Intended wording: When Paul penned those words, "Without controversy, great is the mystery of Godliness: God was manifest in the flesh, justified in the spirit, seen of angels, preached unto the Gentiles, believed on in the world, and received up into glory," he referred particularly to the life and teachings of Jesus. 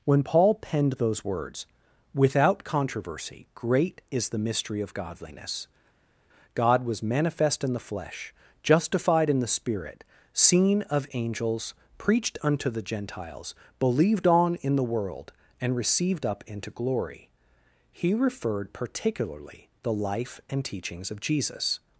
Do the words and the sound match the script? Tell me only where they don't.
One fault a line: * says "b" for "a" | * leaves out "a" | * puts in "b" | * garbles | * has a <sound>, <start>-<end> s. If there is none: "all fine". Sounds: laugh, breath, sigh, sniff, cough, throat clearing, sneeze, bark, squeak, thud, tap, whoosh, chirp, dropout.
* leaves out "to"